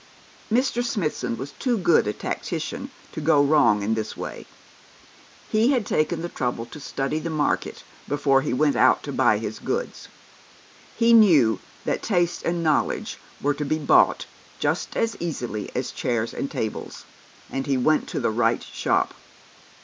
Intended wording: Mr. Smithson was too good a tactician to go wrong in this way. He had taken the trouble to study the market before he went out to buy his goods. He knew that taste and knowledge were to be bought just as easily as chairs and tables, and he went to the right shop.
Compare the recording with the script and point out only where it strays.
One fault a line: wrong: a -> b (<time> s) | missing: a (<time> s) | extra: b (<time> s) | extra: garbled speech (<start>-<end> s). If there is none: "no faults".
no faults